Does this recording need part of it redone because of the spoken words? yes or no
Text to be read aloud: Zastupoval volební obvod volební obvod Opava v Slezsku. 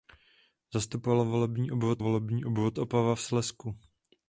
no